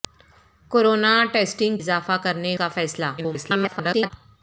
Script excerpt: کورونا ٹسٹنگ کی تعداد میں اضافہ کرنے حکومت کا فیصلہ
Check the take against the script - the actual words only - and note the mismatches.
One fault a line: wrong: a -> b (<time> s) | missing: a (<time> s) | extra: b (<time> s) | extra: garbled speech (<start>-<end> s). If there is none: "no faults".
missing: کی تعداد میں (1.8 s)
missing: حکومت (2.6 s)
extra: garbled speech (3.2-4.1 s)